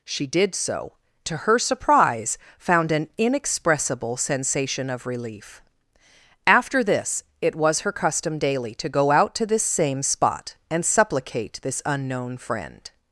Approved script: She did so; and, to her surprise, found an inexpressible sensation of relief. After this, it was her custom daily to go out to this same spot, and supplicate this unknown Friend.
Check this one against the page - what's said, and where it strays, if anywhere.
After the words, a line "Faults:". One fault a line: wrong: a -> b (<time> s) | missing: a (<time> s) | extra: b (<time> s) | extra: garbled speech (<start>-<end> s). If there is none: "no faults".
She did so; to her surprise, found an inexpressible sensation of relief. After this, it was her custom daily to go out to this same spot, and supplicate this unknown Friend.
Faults:
missing: and (0.9 s)